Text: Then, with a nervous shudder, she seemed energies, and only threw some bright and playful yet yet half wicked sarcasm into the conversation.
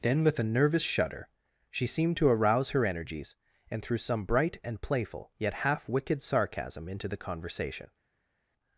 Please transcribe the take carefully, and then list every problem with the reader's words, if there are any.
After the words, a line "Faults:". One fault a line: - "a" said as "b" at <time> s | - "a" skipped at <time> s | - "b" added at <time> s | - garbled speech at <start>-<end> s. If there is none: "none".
Then, with a nervous shudder, she seemed to arouse her energies, and threw some bright and playful yet half wicked sarcasm into the conversation.
Faults:
- "to arouse her" added at 2.2 s
- "only" skipped at 3.8 s
- "yet" skipped at 5.5 s